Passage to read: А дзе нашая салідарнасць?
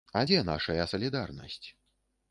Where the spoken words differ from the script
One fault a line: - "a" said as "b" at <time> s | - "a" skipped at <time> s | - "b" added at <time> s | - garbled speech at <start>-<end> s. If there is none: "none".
none